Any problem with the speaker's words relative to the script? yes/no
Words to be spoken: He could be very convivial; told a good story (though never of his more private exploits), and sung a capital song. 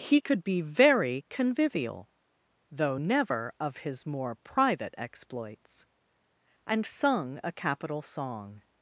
yes